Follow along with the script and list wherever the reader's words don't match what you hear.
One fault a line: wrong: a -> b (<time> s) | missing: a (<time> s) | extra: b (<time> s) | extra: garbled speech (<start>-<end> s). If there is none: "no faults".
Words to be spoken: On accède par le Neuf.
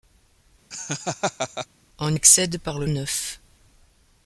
no faults